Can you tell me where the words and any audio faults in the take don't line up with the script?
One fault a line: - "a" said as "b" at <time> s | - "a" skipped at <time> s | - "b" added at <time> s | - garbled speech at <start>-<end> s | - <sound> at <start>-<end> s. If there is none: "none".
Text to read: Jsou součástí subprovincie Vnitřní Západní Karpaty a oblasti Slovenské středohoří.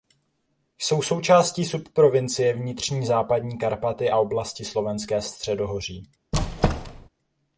- squeak at 6.3-7.1 s